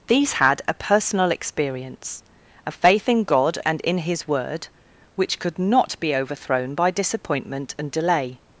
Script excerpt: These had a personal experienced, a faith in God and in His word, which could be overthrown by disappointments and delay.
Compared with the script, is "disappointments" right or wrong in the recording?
wrong